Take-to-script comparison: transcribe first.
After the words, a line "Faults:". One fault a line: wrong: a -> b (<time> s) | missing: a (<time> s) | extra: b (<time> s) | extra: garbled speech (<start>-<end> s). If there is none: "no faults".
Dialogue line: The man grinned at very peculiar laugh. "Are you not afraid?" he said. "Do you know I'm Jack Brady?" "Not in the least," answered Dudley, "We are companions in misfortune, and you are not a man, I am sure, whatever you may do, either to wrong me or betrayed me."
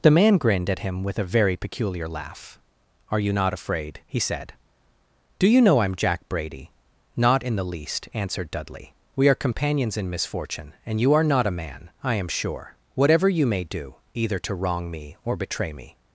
The man grinned at him with a very peculiar laugh. "Are you not afraid?" he said. "Do you know I'm Jack Brady?" "Not in the least," answered Dudley, "We are companions in misfortune, and you are not a man, I am sure, whatever you may do, either to wrong me or betray me."
Faults:
extra: him with a (0.8 s)
wrong: betrayed -> betray (15.3 s)